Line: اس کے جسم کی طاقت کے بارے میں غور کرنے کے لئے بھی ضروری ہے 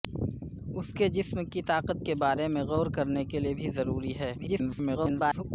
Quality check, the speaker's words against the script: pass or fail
fail